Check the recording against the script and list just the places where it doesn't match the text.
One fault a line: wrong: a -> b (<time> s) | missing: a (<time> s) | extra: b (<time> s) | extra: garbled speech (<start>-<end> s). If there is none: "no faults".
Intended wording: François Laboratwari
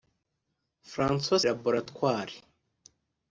no faults